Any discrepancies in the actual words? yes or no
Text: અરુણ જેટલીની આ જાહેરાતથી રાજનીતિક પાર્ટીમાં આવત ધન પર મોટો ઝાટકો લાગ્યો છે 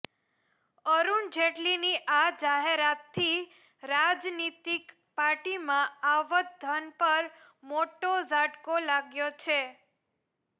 no